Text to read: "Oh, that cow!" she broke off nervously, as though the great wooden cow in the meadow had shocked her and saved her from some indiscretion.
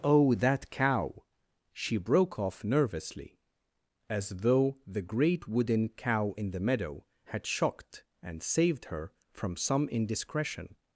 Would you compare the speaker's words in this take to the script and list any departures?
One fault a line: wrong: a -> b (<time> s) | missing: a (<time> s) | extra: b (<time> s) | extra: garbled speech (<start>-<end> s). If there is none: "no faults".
missing: her (8.0 s)